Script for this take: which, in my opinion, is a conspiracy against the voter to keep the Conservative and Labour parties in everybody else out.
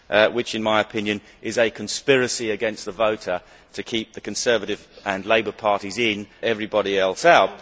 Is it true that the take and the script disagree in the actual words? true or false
false